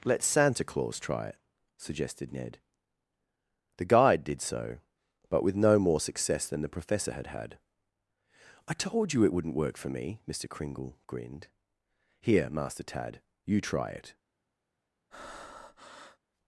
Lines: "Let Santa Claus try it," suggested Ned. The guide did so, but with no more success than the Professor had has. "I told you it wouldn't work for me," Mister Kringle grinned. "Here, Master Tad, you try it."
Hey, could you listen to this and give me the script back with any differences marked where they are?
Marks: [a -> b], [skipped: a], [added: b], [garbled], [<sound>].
"Let Santa Claus try it," suggested Ned. The guide did so, but with no more success than the Professor had [has. -> had] "I told you it wouldn't work for me," Mister Kringle grinned. "Here, Master Tad, you try it." [breath]